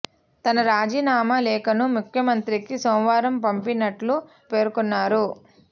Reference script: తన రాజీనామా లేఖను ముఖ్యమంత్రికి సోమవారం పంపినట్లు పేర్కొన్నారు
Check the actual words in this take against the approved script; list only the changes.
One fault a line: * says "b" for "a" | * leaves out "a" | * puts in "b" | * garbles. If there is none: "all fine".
all fine